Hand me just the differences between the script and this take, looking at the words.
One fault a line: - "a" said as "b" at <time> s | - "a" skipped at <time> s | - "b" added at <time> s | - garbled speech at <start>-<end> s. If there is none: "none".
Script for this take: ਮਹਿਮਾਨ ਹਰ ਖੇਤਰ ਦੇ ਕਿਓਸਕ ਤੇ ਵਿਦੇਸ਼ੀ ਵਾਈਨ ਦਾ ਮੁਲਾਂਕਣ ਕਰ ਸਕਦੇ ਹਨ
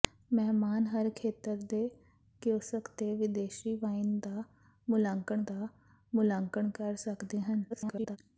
- "ਦਾ ਮੁਲਾਂਕਣ" added at 5.4 s
- garbled speech at 7.7-8.2 s